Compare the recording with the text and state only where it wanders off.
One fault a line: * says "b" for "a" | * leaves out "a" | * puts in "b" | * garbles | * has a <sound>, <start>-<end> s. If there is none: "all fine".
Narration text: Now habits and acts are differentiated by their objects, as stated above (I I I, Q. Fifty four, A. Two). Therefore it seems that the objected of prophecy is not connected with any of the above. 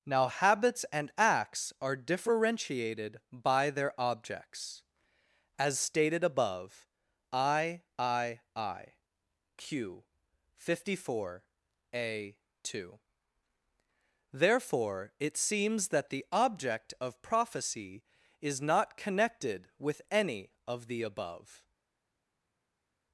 * says "object" for "objected"